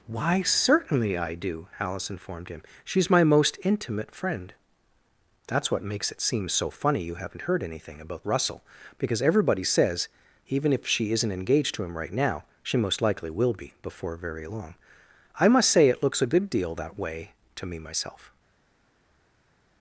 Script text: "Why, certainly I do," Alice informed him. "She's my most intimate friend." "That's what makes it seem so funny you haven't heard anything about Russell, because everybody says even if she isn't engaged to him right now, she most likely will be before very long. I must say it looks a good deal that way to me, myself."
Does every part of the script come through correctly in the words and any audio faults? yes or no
yes